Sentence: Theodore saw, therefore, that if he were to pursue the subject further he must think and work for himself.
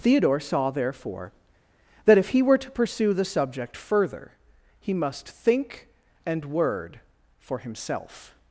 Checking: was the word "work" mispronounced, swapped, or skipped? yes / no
yes